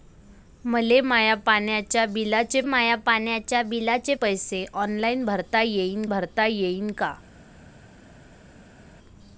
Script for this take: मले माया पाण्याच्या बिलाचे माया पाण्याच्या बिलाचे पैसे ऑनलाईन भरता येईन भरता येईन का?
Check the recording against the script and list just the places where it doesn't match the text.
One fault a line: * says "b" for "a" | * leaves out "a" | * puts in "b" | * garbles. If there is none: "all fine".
all fine